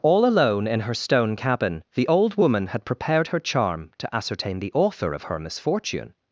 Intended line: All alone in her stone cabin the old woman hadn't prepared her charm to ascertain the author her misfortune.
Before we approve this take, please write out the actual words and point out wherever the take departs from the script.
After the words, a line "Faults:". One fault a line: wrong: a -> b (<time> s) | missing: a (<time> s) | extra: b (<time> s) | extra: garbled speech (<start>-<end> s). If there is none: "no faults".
All alone in her stone cabin the old woman had prepared her charm to ascertain the author of her misfortune.
Faults:
wrong: hadn't -> had (2.7 s)
extra: of (5.1 s)